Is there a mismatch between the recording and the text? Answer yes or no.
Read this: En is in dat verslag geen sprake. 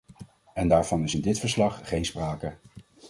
yes